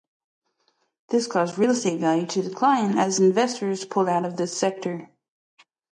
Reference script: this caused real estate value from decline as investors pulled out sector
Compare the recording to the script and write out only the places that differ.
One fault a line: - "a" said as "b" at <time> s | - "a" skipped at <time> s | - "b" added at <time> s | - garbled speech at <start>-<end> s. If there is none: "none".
- "from" said as "to" at 2.2 s
- "of this" added at 4.2 s